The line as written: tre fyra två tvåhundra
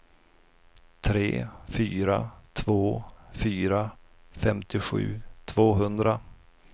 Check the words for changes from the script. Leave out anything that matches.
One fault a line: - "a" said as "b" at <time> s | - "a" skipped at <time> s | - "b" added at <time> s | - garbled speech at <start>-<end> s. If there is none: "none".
- "fyra femtiosju" added at 3.3 s